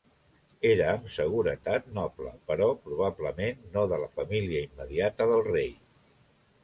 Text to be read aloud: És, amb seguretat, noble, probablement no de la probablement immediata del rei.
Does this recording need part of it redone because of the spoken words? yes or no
yes